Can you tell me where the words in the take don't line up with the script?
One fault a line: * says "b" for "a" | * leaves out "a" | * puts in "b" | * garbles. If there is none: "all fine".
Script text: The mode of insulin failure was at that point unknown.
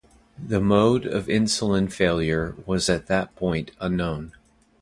all fine